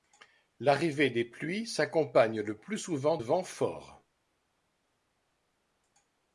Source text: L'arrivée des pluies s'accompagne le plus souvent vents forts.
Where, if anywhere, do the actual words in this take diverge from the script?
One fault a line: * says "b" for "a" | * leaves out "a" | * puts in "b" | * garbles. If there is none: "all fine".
all fine